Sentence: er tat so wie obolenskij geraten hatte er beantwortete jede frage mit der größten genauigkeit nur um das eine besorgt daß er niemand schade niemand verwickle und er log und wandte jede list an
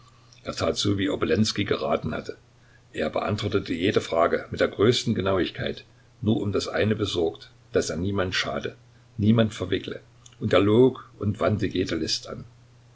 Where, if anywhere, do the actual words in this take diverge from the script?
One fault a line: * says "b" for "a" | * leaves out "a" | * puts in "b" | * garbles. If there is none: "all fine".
all fine